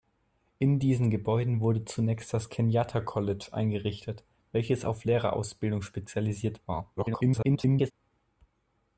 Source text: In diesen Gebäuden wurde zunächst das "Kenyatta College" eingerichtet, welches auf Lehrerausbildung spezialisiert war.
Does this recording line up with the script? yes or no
no